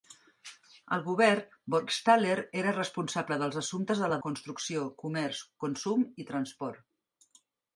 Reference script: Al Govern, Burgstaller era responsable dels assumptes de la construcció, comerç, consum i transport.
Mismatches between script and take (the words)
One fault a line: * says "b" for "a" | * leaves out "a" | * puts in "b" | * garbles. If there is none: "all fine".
all fine